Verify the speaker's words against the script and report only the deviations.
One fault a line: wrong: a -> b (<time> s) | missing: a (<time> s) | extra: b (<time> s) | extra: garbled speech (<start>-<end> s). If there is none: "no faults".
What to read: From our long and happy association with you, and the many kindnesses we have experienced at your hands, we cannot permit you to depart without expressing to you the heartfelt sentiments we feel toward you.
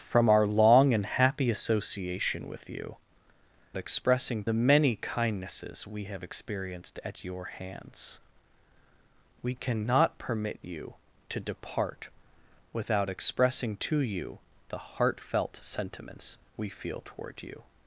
wrong: and -> expressing (3.8 s)